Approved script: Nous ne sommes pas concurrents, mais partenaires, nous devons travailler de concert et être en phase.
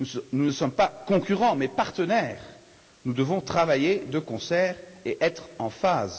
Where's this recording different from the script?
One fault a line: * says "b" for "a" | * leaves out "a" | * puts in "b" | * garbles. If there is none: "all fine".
all fine